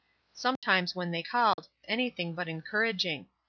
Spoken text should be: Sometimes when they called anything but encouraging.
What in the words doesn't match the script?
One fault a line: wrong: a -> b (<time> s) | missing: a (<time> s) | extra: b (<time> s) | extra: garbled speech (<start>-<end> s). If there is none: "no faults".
no faults